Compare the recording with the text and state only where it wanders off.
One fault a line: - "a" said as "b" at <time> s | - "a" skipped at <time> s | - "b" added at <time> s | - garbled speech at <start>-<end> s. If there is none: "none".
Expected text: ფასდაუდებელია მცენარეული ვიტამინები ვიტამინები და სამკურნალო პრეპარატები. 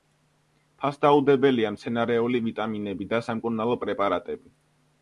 - "ვიტამინები" skipped at 3.1 s